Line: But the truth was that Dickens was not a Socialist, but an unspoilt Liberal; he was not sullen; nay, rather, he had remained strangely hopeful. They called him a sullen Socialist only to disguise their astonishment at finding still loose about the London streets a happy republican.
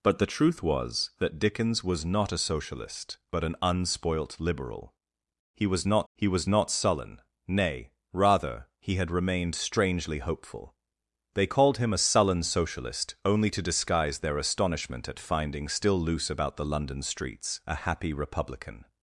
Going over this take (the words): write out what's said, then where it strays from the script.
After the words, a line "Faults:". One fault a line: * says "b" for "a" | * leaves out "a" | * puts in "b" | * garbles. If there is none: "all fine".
But the truth was that Dickens was not a Socialist, but an unspoilt Liberal; he was not he was not sullen; nay, rather, he had remained strangely hopeful. They called him a sullen Socialist only to disguise their astonishment at finding still loose about the London streets a happy republican.
Faults:
* puts in "he was not"